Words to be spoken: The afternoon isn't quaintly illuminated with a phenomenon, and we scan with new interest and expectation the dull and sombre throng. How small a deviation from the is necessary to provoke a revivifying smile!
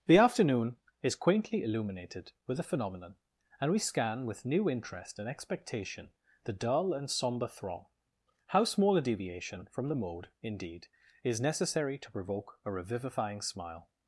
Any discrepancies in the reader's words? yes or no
yes